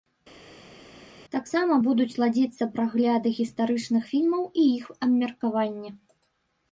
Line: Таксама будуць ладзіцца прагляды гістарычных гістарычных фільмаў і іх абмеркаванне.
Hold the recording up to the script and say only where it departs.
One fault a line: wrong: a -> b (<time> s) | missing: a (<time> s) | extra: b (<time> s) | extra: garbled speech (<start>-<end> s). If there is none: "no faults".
missing: гістарычных (4.0 s)